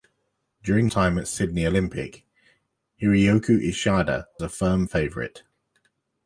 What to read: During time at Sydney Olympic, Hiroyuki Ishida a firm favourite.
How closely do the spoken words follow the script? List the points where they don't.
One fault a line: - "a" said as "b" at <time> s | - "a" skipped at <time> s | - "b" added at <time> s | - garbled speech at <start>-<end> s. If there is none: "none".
none